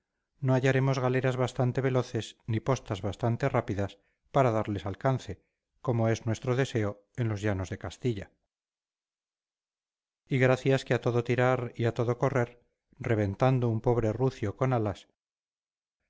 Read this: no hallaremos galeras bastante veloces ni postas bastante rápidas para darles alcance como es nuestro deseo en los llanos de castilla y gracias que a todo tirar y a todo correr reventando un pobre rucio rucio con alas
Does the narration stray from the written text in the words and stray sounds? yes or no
yes